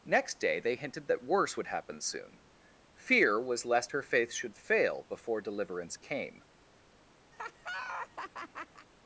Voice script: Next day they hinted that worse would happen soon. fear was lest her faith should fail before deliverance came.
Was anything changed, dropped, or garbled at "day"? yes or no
no